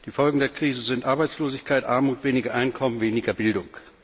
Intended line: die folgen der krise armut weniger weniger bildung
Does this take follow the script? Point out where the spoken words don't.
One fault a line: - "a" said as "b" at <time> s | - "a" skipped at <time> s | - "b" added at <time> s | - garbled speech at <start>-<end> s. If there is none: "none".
- "sind arbeitslosigkeit" added at 0.8 s
- "einkommen" added at 2.5 s